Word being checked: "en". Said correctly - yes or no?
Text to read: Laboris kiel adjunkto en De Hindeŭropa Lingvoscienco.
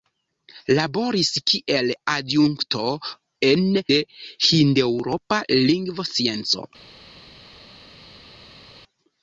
yes